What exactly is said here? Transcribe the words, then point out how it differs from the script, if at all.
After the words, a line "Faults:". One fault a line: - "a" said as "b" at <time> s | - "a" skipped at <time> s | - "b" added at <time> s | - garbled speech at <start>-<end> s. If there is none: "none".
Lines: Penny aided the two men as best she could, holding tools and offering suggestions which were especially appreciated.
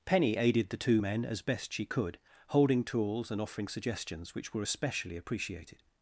Penny aided the two men as best she could, holding tools and offering suggestions which were especially appreciated.
Faults:
none